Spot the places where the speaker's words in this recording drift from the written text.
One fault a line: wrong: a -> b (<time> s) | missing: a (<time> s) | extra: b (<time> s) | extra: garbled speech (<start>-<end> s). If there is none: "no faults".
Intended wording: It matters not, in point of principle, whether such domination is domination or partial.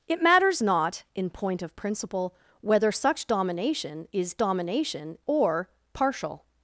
no faults